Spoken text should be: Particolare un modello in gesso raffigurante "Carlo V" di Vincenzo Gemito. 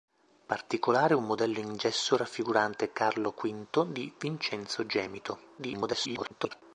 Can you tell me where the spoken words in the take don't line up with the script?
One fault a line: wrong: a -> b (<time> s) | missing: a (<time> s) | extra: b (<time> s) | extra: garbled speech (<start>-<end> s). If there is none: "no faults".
extra: garbled speech (5.6-6.6 s)